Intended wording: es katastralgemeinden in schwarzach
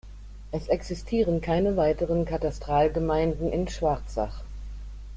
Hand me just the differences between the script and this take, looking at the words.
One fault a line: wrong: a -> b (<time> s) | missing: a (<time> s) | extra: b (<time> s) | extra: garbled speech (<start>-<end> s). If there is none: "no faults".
extra: existieren keine weiteren (0.7 s)